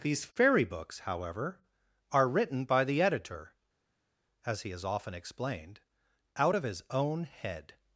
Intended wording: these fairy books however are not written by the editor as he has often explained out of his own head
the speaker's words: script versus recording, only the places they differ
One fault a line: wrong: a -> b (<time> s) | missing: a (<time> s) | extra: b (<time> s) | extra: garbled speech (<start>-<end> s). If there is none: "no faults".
missing: not (2.3 s)